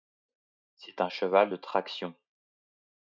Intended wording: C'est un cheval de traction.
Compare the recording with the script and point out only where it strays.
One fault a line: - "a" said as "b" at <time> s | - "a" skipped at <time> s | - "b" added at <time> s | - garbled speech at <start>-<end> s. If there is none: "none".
none